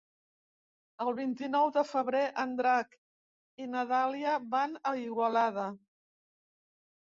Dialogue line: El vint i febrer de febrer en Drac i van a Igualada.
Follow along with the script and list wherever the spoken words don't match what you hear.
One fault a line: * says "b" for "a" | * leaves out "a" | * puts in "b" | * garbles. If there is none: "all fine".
* says "nou" for "febrer"
* puts in "na Dàlia"